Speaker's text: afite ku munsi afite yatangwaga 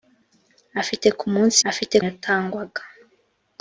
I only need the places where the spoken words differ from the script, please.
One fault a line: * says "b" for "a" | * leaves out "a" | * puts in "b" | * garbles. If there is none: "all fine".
all fine